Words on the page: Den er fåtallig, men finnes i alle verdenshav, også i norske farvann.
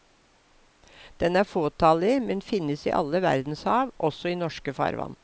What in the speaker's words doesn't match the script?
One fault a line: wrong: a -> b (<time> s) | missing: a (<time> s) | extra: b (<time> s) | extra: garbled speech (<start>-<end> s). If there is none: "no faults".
no faults